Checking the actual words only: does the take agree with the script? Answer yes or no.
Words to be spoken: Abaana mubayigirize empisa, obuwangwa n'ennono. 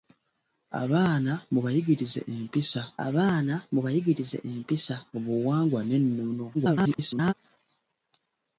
no